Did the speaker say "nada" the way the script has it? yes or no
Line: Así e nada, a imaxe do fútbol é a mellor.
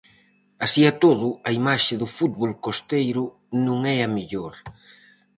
no